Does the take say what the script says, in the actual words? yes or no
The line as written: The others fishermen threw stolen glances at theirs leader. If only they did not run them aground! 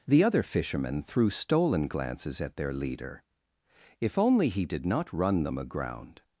no